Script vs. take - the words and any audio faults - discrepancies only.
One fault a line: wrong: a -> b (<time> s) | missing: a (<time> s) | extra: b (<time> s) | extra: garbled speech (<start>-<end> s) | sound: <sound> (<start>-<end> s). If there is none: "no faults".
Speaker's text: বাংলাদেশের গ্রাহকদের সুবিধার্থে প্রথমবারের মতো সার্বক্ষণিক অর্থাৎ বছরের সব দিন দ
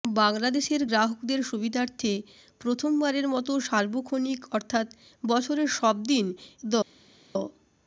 no faults